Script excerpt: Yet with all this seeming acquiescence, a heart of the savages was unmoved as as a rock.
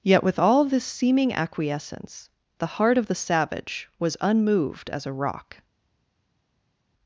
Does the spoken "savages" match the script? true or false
false